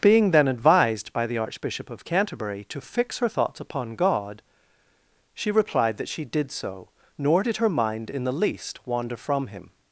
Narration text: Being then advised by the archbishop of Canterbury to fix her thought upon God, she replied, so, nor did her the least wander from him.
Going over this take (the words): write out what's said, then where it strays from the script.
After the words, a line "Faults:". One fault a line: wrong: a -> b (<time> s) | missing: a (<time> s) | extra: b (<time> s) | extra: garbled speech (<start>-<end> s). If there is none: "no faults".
Being then advised by the archbishop of Canterbury to fix her thoughts upon God, she replied, that she did so, nor did her mind in the least wander from him.
Faults:
wrong: thought -> thoughts (3.3 s)
extra: that she did (6.0 s)
extra: mind in (7.7 s)